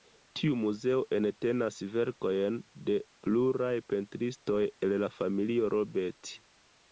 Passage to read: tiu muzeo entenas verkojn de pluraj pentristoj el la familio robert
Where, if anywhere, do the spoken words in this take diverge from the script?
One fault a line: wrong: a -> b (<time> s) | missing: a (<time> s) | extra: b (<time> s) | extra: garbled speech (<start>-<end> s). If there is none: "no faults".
no faults